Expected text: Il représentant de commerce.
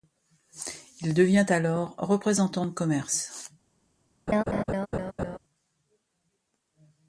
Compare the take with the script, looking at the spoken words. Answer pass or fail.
fail